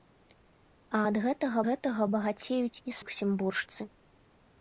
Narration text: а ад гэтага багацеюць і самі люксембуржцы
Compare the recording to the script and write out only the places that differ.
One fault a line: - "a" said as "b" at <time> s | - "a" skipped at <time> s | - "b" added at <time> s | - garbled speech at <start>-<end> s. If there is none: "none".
- "гэтага" added at 1.7 s
- "самі" skipped at 3.0 s